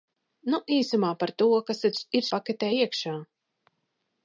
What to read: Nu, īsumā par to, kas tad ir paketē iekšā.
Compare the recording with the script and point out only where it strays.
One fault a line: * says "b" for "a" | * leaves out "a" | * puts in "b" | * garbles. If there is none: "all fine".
all fine